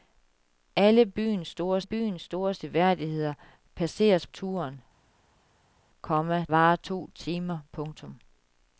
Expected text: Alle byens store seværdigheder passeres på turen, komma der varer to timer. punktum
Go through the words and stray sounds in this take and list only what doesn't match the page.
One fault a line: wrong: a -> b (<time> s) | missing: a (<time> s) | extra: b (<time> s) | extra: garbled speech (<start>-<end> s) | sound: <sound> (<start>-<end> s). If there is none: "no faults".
extra: byens store (1.8 s)
missing: på (4.3 s)
missing: der (6.5 s)